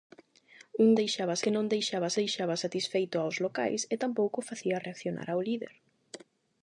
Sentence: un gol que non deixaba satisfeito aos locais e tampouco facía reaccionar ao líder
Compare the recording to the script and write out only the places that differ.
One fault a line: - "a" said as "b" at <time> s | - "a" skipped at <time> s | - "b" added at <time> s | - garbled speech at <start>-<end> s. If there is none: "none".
- "gol" said as "deixaba" at 1.0 s
- "deixaba" added at 2.2 s